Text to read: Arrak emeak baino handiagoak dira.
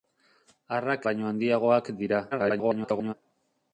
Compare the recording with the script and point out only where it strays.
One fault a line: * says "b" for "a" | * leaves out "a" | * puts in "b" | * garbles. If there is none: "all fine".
* leaves out "emeak"
* garbles